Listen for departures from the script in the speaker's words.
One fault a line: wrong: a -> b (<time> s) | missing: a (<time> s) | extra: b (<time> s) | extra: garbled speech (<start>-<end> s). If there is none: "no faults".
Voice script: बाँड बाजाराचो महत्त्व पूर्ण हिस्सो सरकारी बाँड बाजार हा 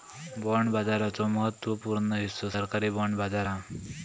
no faults